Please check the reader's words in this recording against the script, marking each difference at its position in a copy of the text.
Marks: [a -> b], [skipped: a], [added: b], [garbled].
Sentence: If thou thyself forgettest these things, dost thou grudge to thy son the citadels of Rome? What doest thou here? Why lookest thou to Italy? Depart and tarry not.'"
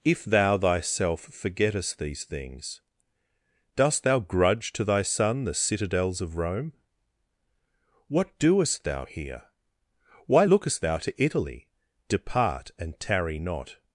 If thou thyself forgettest these things, dost thou grudge to thy son the citadels of Rome? What doest thou here? Why lookest thou to Italy? Depart and tarry not.'"